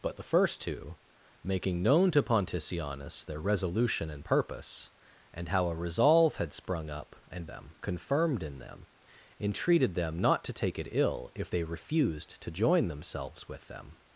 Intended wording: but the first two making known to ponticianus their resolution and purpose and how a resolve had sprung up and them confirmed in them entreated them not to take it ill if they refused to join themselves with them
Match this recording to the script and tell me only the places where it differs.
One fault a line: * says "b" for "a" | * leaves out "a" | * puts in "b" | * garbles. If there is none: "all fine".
all fine